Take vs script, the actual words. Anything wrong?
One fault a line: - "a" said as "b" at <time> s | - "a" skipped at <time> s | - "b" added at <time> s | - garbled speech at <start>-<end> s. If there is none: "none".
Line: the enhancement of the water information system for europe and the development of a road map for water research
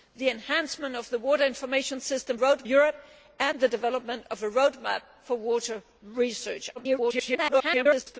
- "for" said as "road" at 2.3 s
- garbled speech at 6.8-8.2 s